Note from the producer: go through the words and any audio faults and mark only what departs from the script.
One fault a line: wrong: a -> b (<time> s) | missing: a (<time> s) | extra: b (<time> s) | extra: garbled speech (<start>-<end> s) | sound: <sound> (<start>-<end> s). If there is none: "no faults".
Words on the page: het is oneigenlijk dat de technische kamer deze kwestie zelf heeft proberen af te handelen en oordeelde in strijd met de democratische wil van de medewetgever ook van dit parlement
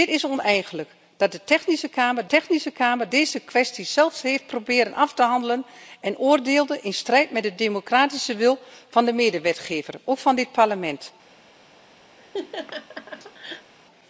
extra: technische kamer (2.3 s)
sound: laugh (12.2-13.7 s)